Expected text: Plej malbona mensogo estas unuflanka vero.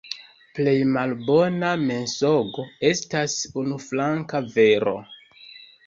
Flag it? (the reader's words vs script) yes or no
no